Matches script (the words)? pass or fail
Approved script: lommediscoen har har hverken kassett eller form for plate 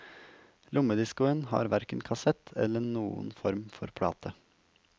fail